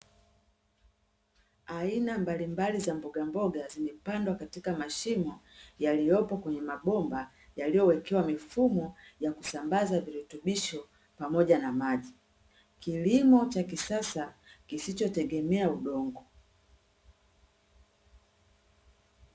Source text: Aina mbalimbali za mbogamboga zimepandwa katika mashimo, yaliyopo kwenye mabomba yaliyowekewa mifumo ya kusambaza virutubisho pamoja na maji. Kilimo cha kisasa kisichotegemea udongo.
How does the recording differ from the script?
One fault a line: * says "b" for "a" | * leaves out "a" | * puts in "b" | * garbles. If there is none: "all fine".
all fine